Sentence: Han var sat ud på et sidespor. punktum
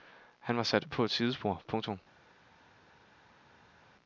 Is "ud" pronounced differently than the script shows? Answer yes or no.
yes